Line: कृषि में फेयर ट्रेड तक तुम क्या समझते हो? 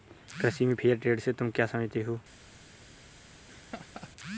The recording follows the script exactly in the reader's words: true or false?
false